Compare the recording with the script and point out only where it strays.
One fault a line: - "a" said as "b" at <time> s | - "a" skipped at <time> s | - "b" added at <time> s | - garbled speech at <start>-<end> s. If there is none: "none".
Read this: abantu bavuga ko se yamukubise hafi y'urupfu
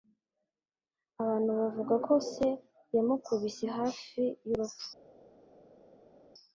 none